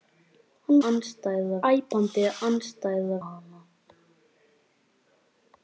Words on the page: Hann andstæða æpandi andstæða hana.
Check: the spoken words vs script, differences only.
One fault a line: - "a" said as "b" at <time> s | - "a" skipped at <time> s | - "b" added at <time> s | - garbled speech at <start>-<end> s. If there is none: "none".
none